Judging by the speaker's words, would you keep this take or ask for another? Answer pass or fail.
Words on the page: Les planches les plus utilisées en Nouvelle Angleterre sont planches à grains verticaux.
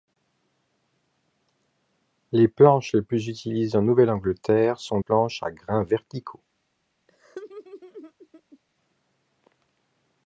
pass